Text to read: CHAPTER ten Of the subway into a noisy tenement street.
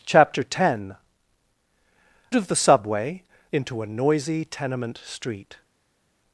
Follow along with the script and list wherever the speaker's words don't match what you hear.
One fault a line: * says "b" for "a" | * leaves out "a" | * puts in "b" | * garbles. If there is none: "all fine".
all fine